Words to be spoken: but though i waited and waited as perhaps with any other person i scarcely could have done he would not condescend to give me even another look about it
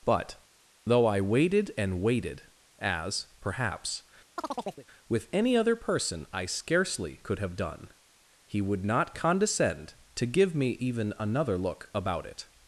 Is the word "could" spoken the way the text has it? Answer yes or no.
yes